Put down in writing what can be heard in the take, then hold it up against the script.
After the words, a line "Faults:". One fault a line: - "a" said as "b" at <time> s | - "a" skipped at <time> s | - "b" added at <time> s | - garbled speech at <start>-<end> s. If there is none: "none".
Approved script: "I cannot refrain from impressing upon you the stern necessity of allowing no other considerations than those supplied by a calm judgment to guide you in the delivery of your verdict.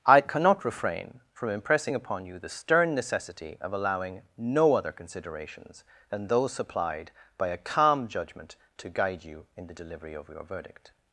"I cannot refrain from impressing upon you the stern necessity of allowing no other considerations than those supplied by a calm judgment to guide you in the delivery of your verdict.
Faults:
none